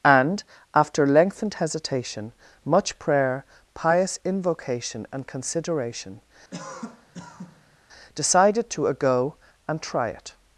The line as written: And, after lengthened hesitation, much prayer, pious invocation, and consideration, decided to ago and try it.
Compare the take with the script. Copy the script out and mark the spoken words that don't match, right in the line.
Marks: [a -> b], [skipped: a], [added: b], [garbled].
And, after lengthened hesitation, much prayer, pious invocation, and consideration, decided to ago and try it.